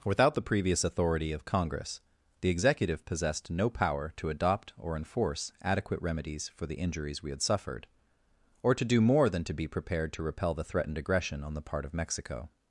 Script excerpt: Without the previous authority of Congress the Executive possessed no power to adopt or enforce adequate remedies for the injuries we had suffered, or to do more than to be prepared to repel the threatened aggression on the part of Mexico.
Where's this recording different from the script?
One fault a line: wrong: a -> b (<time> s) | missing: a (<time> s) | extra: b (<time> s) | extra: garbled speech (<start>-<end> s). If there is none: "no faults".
no faults